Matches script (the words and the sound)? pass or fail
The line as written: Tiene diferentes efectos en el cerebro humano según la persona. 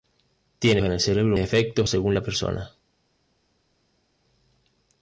fail